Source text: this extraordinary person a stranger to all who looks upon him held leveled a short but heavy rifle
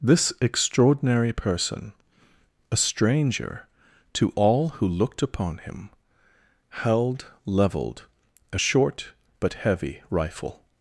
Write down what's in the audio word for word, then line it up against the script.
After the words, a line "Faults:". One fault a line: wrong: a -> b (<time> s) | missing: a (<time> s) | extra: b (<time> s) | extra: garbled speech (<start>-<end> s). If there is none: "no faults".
this extraordinary person a stranger to all who looked upon him held leveled a short but heavy rifle
Faults:
wrong: looks -> looked (4.9 s)